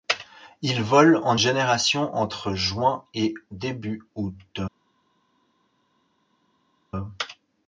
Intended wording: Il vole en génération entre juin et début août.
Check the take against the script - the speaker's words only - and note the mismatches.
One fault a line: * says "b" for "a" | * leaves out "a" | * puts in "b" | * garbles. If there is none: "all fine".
all fine